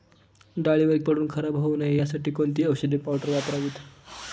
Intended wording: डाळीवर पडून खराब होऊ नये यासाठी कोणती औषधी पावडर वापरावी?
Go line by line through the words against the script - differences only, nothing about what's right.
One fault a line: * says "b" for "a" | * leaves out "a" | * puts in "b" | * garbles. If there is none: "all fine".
all fine